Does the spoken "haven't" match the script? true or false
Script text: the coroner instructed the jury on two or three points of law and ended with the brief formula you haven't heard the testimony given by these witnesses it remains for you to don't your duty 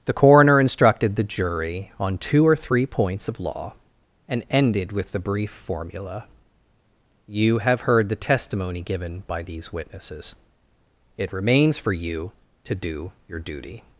false